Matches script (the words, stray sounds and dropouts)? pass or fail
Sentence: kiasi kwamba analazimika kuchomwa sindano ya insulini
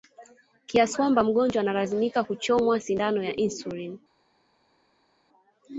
fail